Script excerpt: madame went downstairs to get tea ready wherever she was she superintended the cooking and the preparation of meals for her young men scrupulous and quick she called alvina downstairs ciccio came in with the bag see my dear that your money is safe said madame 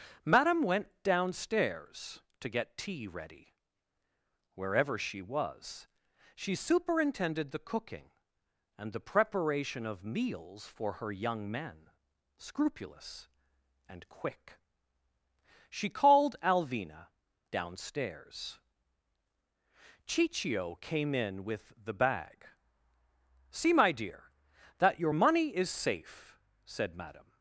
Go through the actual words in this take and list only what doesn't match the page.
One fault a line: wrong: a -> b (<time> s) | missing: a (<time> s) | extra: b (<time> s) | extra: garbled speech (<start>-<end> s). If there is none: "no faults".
no faults